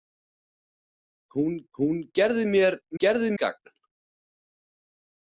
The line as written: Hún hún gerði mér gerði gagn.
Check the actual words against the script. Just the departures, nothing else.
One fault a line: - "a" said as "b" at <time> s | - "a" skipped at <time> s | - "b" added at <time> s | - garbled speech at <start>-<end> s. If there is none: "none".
none